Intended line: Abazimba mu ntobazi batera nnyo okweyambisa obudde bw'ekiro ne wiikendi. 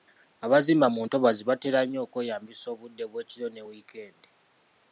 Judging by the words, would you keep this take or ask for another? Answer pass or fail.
pass